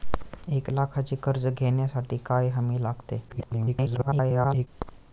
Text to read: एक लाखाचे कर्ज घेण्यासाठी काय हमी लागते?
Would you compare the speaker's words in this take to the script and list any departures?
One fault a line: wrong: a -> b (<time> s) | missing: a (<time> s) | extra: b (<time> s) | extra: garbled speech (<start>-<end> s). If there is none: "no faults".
extra: garbled speech (3.3-4.7 s)